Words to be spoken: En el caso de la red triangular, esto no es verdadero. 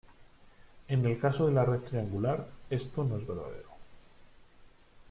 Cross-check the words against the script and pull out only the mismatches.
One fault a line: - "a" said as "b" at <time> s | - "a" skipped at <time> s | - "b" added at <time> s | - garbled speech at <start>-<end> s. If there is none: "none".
none